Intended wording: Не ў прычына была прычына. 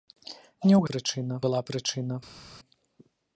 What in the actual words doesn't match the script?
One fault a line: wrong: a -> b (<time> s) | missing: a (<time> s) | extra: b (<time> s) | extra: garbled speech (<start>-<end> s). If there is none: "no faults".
no faults